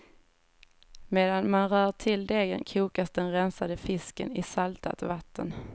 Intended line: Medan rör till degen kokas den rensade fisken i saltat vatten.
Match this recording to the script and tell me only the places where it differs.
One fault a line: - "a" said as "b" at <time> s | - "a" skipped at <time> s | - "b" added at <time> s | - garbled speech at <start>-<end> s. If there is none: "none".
- "man" added at 1.5 s